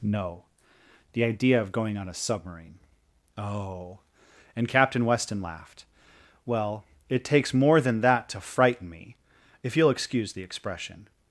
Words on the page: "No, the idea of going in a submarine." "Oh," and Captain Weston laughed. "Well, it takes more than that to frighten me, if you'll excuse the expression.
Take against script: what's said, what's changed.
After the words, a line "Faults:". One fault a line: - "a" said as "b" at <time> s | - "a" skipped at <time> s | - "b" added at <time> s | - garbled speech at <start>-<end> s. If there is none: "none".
"No, the idea of going on a submarine." "Oh," and Captain Weston laughed. "Well, it takes more than that to frighten me, if you'll excuse the expression.
Faults:
- "in" said as "on" at 1.9 s